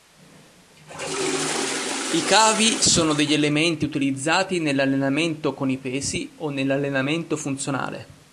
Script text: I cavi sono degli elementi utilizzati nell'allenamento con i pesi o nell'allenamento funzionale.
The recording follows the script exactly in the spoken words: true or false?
true